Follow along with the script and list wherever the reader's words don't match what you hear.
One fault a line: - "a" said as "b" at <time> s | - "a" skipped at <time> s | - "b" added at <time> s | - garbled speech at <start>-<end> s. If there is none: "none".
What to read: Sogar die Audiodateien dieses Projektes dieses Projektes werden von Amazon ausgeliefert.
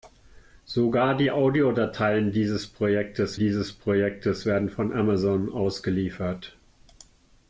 none